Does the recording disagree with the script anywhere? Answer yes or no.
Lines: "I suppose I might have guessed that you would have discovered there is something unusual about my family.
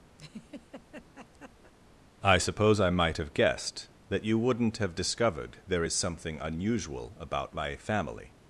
yes